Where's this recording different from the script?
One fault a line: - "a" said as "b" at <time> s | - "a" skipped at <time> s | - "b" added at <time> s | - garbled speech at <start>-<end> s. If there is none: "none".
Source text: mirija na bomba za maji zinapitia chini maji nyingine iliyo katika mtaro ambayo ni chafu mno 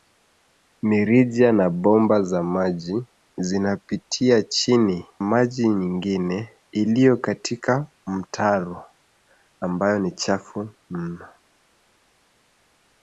none